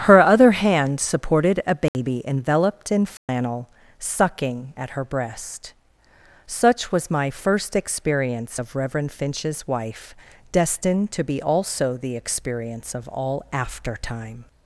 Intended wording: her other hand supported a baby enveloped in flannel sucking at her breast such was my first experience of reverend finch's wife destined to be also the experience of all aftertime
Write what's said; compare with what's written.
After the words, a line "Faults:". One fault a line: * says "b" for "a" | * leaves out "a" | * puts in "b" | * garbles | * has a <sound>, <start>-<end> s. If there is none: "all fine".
her other hand supported a baby enveloped in flannel sucking at her breast such was my first experience of reverend finch's wife destined to be also the experience of all aftertime
Faults:
* has a dropout, 1.9-1.9 s
* has a dropout, 3.2-3.3 s